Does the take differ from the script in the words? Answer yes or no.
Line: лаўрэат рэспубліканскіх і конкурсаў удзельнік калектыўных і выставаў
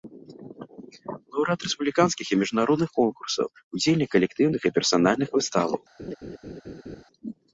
yes